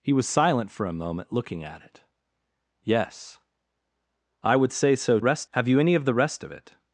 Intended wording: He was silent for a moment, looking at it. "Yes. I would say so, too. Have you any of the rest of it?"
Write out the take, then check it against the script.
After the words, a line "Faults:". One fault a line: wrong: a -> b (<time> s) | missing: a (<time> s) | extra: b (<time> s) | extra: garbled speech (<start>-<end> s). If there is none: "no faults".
He was silent for a moment, looking at it. "Yes. I would say so, rest. Have you any of the rest of it?"
Faults:
wrong: too -> rest (5.2 s)